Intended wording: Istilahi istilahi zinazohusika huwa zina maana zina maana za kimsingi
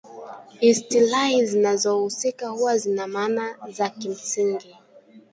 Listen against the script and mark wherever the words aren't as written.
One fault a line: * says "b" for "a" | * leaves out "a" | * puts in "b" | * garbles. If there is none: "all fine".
* leaves out "istilahi"
* leaves out "zina maana"